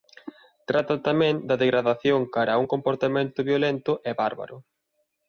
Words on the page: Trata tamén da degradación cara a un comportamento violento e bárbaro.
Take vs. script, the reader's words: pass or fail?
pass